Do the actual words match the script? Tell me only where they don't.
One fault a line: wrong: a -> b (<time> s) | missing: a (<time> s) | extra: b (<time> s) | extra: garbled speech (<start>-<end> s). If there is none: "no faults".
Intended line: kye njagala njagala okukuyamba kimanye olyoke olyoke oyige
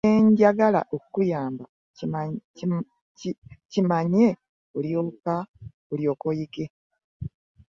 missing: njagala (0.8 s)
missing: olyoke (6.3 s)